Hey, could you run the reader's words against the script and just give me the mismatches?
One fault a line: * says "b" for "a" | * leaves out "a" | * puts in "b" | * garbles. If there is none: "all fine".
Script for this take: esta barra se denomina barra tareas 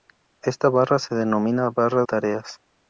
all fine